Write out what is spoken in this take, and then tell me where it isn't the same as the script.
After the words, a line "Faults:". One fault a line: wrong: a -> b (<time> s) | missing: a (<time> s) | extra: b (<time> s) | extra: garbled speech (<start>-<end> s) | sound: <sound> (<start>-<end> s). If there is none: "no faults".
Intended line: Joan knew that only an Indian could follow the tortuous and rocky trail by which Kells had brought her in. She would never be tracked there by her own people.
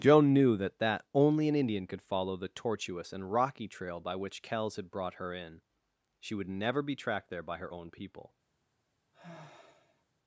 Joan knew that that only an Indian could follow the tortuous and rocky trail by which Kells had brought her in. She would never be tracked there by her own people.
Faults:
extra: that (0.8 s)
sound: sigh (9.1-10.1 s)